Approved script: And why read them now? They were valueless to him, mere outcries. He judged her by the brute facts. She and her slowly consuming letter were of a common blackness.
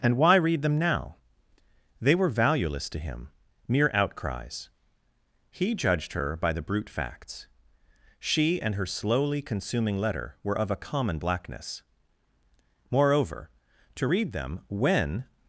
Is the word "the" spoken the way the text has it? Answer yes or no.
yes